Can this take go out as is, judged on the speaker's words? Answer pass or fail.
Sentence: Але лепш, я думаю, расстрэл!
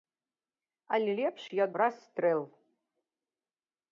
fail